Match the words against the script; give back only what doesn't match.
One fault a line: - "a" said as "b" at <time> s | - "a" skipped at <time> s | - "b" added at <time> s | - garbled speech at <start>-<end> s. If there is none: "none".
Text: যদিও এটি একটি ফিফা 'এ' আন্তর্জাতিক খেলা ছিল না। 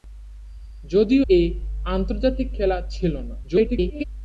- "এটি একটি ফিফা" skipped at 1.2 s
- garbled speech at 3.4-4.0 s